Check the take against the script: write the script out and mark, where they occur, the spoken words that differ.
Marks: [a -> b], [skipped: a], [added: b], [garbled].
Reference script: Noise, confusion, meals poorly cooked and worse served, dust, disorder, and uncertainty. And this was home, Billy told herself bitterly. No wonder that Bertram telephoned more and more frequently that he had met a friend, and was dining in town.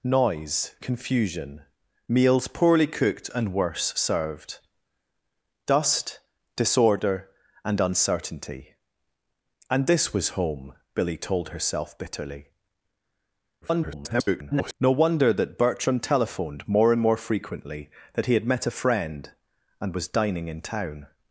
Noise, confusion, meals poorly cooked and worse served, dust, disorder, and uncertainty. And this was home, Billy told herself bitterly. [garbled] No wonder that Bertram telephoned more and more frequently that he had met a friend, and was dining in town.